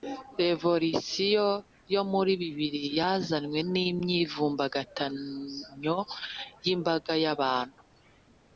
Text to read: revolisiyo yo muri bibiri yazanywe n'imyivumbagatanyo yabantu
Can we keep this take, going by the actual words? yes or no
no